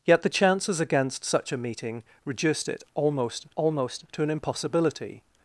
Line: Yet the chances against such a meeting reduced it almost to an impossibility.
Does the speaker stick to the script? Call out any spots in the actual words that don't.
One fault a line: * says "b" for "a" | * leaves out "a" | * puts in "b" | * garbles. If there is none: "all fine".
* puts in "almost"